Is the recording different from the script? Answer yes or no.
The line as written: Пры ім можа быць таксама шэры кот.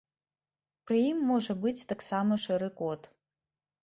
no